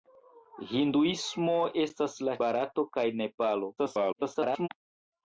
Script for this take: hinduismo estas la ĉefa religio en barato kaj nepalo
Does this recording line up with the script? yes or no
no